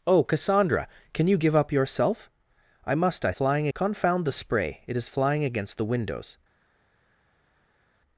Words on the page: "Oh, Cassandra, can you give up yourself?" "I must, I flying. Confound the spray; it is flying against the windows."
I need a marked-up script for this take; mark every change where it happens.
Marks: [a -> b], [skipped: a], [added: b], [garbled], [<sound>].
"Oh, Cassandra, can you give up yourself?" "I must, I flying. Confound the spray; it is flying against the windows."